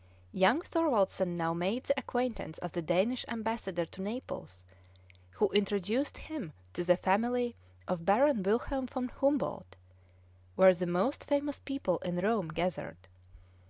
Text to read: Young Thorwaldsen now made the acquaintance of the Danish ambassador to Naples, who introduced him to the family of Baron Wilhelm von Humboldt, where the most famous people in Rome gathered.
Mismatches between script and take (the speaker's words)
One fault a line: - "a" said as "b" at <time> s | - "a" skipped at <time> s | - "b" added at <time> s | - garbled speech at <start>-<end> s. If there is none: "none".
none